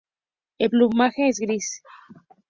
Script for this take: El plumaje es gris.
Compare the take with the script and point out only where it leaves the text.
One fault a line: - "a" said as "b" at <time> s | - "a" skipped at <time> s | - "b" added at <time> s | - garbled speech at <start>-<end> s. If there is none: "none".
none